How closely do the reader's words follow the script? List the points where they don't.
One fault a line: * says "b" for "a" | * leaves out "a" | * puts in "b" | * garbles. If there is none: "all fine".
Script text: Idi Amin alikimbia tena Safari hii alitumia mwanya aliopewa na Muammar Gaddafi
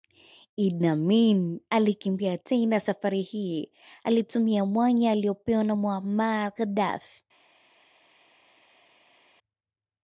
all fine